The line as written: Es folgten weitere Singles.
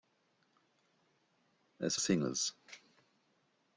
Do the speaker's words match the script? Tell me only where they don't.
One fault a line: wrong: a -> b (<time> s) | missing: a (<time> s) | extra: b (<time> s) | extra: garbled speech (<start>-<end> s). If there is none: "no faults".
missing: folgten weitere (1.9 s)